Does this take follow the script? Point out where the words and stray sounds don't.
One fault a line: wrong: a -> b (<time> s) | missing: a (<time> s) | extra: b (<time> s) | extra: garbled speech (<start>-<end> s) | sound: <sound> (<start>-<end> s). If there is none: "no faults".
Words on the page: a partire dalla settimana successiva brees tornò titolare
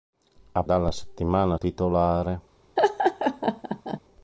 missing: partire (0.6 s)
missing: successiva brees tornò (1.6 s)
sound: laugh (2.8-4.0 s)